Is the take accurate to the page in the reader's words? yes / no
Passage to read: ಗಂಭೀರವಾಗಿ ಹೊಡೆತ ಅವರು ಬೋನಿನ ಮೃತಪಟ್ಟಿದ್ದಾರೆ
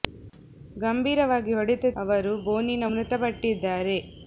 yes